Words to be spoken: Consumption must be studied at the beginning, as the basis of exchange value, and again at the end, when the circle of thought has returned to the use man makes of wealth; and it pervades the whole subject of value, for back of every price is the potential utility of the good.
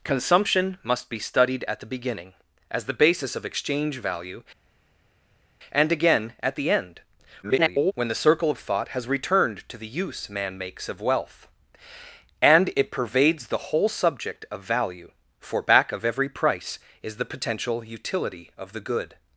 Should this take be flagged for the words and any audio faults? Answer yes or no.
yes